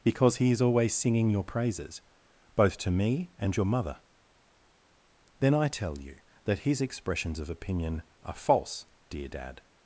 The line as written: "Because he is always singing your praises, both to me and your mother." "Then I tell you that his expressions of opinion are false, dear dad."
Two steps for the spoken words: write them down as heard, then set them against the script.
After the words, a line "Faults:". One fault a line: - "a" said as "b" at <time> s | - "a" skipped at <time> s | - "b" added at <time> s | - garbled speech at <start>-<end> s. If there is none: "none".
"Because he is always singing your praises, both to me and your mother." "Then I tell you that his expressions of opinion are false, dear dad."
Faults:
none